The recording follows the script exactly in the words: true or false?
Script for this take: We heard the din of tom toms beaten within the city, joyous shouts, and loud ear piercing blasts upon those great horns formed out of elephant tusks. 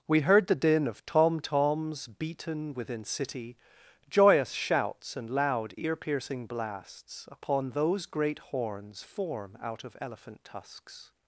false